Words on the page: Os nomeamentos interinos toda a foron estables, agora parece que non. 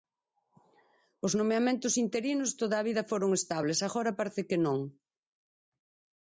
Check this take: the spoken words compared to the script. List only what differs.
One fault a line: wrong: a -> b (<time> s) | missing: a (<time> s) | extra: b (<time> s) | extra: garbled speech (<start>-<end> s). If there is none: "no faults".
extra: vida (2.9 s)